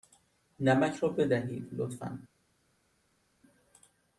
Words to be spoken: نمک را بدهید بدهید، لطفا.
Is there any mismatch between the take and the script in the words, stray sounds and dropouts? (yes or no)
yes